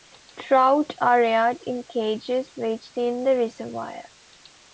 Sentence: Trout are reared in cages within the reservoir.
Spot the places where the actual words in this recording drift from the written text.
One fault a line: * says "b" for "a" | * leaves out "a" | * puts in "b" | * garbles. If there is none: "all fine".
all fine